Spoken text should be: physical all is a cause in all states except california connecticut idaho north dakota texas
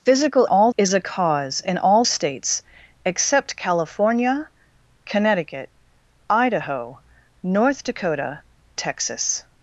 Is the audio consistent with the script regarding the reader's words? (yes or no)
yes